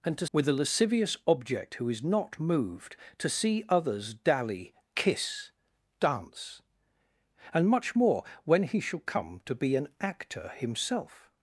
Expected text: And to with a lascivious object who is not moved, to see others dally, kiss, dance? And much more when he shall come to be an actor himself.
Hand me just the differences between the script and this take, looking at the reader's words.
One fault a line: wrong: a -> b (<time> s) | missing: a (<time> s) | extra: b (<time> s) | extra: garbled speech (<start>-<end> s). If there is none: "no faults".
no faults